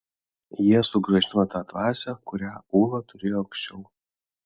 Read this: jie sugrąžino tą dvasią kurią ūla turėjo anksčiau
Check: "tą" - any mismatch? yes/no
no